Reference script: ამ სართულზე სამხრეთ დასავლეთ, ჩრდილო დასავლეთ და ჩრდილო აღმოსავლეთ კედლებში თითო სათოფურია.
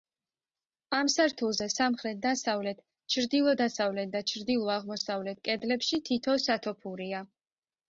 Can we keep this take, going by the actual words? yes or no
yes